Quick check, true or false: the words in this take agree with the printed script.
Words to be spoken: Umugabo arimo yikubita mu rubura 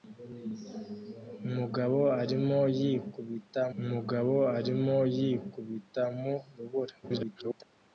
false